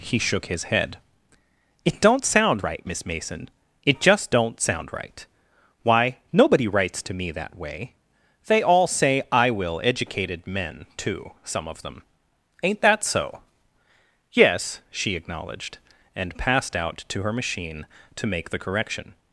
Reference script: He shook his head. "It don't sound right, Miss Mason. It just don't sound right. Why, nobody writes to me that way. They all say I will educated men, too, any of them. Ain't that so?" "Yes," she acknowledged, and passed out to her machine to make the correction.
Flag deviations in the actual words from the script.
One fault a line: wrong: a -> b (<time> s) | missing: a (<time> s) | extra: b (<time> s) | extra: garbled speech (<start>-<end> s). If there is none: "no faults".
wrong: any -> some (11.4 s)